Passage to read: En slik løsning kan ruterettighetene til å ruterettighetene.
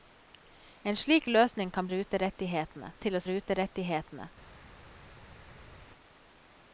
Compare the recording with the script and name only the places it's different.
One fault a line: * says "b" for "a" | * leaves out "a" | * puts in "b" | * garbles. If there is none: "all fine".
all fine